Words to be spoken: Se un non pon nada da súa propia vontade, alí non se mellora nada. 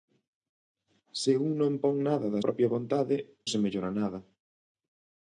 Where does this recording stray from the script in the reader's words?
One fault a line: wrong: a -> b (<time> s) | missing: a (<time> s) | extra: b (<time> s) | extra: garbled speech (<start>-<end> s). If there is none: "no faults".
missing: súa (2.4 s)
missing: alí non (3.2 s)